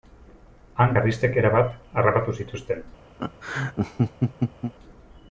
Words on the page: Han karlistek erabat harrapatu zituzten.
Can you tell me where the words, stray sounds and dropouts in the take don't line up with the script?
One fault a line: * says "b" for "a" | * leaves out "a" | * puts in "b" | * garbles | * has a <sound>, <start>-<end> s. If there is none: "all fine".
* has a laugh, 3.2-4.7 s